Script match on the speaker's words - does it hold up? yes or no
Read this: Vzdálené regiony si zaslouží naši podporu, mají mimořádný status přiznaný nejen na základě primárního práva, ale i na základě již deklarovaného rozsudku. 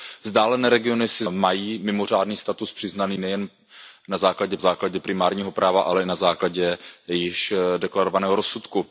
no